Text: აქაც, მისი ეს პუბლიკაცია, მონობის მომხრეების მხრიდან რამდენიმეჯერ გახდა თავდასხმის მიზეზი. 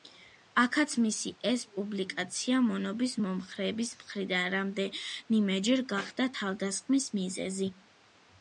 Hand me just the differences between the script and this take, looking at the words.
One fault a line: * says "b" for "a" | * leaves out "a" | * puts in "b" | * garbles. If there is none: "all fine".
all fine